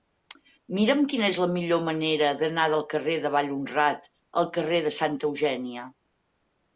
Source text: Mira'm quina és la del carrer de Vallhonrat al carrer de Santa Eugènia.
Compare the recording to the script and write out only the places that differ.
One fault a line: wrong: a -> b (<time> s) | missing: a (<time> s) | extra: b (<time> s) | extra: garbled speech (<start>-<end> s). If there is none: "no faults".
extra: millor manera d'anar (1.6 s)